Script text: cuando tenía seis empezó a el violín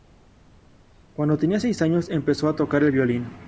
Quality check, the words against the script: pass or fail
fail